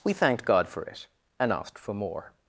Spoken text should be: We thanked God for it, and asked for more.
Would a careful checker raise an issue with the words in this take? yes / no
no